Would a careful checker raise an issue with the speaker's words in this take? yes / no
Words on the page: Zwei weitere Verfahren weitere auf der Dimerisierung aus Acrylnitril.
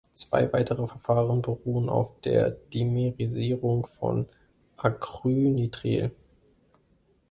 yes